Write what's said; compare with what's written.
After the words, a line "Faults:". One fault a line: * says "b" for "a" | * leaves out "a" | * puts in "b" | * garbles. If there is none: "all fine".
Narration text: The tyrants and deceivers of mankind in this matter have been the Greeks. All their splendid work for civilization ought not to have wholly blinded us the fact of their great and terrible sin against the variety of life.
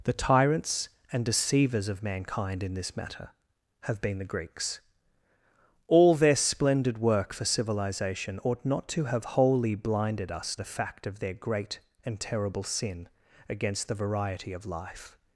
The tyrants and deceivers of mankind in this matter have been the Greeks. All their splendid work for civilization ought not to have wholly blinded us the fact of their great and terrible sin against the variety of life.
Faults:
all fine